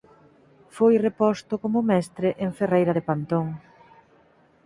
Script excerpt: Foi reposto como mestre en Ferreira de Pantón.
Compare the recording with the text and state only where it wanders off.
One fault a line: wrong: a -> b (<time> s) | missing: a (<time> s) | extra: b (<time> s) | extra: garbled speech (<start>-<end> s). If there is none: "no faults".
no faults